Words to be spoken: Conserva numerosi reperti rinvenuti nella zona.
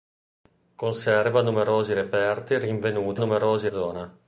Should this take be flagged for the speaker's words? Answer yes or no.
yes